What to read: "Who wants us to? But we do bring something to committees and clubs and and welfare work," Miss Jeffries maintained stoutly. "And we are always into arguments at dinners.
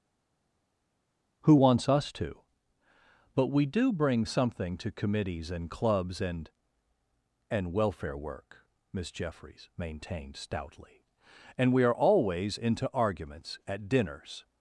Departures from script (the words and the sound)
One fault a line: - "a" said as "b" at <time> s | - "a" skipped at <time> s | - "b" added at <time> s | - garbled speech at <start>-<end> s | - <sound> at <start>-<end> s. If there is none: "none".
none